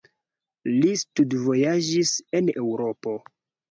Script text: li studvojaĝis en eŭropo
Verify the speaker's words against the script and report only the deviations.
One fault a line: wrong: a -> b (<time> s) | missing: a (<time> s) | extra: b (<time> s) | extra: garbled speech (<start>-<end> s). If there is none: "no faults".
no faults